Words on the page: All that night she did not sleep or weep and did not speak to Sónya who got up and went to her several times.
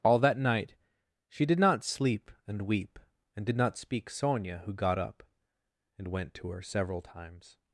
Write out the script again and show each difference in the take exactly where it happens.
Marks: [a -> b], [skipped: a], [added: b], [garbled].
All that night she did not sleep [or -> and] weep and did not speak [skipped: to] Sónya who got up and went to her several times.